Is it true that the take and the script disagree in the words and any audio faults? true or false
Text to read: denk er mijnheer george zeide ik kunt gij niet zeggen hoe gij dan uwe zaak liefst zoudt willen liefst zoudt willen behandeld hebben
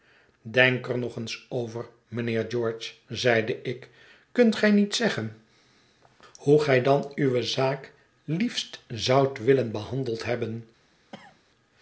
true